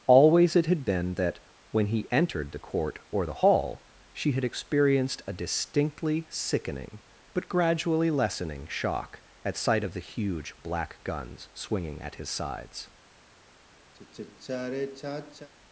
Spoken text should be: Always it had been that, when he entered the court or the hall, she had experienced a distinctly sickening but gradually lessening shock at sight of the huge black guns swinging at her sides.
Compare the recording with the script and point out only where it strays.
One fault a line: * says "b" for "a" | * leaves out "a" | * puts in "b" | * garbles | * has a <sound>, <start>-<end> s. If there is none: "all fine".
* says "his" for "her"
* has a sigh, 13.9-15.5 s